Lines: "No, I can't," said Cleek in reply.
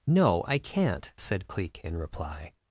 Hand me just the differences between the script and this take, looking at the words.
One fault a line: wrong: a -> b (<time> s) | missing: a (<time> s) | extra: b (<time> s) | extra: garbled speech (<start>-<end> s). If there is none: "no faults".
no faults